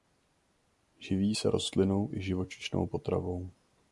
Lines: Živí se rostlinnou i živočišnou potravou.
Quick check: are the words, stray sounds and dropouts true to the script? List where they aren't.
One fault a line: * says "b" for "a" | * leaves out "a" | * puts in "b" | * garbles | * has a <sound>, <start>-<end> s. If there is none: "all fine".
all fine